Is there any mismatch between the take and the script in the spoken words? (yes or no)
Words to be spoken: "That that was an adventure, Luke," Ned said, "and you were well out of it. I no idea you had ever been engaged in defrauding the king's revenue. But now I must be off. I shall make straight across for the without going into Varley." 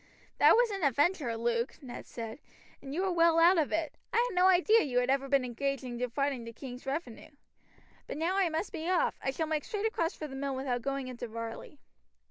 yes